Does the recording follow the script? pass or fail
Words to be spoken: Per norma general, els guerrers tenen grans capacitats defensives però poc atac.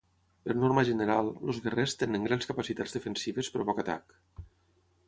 pass